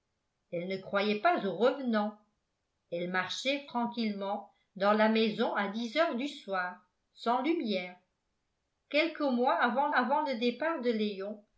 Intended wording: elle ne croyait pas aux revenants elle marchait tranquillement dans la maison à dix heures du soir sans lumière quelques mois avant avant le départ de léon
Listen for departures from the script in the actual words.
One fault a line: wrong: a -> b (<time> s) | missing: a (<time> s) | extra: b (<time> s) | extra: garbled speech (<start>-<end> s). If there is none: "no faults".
no faults